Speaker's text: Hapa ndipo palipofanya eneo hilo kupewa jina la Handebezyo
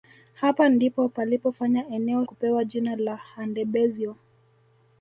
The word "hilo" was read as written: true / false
false